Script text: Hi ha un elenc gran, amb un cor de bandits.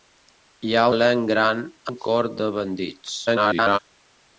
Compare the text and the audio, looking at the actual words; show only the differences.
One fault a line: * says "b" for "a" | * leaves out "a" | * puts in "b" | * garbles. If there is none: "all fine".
* leaves out "un"
* leaves out "amb"
* garbles